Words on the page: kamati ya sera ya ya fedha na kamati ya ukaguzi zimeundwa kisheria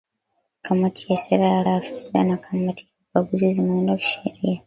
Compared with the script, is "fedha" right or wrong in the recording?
right